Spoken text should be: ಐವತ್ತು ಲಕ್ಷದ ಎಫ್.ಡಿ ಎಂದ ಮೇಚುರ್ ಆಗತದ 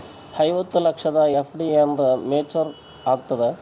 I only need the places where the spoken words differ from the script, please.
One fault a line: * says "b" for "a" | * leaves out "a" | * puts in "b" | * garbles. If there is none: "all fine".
all fine